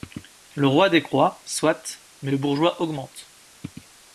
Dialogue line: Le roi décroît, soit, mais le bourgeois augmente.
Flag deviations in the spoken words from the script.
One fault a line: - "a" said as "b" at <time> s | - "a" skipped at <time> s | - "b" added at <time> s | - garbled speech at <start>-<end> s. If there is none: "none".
none